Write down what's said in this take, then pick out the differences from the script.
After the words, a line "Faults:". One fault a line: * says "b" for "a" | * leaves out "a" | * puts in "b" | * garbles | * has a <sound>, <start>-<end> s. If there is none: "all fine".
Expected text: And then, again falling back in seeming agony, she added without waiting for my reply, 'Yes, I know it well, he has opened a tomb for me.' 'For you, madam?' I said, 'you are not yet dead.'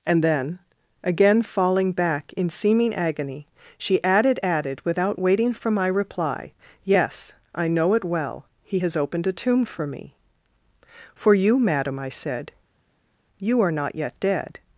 And then, again falling back in seeming agony, she added added without waiting for my reply, 'Yes, I know it well, he has opened a tomb for me.' 'For you, madam?' I said, 'you are not yet dead.'
Faults:
* puts in "added"